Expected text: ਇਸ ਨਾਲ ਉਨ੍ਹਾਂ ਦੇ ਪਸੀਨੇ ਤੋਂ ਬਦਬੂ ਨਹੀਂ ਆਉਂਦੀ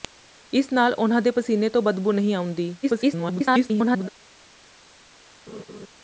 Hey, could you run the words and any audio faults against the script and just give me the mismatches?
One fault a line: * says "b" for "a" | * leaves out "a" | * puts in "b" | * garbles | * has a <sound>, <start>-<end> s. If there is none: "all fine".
* garbles
* has a laugh, 5.5-5.9 s